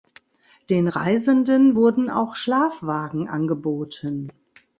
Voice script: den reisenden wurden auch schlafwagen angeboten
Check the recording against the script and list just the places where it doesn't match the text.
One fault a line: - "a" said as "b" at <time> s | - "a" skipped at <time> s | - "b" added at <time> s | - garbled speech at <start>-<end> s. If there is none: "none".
none